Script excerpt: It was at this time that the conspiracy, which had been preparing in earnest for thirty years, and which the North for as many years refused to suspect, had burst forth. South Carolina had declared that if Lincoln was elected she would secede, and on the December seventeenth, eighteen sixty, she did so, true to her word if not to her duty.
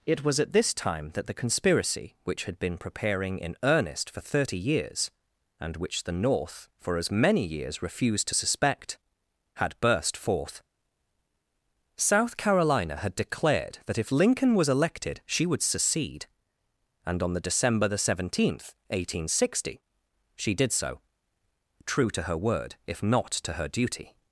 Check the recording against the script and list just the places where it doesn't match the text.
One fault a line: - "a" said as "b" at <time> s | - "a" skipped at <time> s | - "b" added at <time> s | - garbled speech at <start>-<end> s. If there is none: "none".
- "the" added at 17.9 s